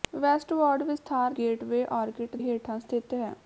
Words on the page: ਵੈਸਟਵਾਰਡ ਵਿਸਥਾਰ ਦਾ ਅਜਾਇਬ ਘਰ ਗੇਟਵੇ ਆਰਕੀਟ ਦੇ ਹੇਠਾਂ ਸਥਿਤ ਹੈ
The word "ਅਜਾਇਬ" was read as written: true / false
false